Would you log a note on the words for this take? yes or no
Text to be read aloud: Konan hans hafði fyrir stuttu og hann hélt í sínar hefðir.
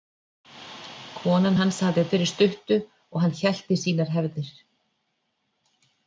no